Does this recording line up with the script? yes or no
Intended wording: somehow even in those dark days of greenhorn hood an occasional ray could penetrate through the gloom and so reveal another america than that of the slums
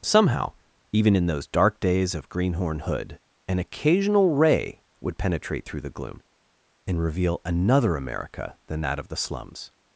no